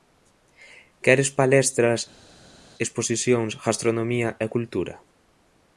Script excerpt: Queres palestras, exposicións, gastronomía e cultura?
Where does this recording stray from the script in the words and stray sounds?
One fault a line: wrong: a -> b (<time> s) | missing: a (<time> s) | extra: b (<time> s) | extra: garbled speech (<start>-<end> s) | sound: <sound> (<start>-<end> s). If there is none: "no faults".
no faults